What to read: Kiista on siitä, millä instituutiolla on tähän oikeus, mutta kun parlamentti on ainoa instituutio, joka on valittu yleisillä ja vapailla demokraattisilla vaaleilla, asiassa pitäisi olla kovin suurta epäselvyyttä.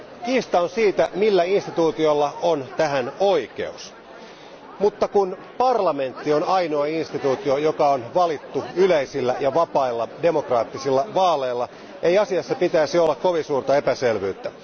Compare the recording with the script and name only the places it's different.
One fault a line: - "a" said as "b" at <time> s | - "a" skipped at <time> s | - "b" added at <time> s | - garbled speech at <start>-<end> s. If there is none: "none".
- "ei" added at 12.0 s